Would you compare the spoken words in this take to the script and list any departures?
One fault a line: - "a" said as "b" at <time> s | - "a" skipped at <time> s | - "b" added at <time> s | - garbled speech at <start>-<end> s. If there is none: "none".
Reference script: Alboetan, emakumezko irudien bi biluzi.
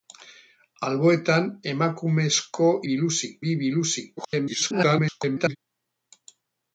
- "irudien" said as "biluzi" at 2.9 s
- garbled speech at 4.2-5.6 s